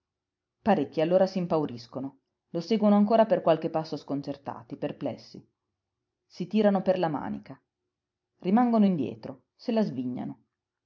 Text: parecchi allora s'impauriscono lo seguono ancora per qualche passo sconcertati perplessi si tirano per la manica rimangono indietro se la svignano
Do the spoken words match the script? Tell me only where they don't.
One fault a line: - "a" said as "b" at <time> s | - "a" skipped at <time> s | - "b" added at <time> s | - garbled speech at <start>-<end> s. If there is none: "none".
none